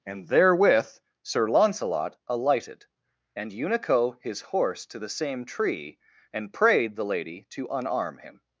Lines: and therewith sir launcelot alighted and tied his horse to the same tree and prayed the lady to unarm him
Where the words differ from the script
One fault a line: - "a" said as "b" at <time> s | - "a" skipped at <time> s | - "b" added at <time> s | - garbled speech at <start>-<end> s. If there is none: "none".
- "tied" said as "unico" at 3.5 s